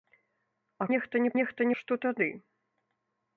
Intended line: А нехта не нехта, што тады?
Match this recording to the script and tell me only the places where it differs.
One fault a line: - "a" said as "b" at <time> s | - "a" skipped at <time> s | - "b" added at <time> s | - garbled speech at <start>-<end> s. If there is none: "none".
none